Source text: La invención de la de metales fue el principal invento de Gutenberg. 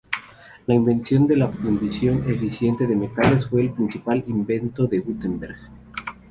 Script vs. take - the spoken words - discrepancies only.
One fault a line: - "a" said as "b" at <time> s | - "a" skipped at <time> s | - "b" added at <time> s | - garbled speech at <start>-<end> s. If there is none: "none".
- "fundición eficiente" added at 1.5 s